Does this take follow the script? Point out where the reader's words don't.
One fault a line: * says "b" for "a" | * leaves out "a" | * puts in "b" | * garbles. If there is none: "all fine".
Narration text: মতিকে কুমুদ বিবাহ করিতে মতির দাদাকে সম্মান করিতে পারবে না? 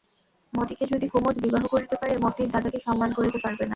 * puts in "যদি"
* puts in "পারে"